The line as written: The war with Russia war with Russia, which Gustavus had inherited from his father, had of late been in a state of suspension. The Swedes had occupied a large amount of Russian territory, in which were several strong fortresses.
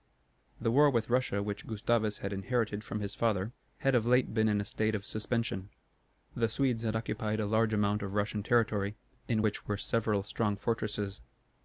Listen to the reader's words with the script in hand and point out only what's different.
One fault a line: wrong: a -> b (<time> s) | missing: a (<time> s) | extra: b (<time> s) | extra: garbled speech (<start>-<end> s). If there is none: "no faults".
missing: war with Russia (1.4 s)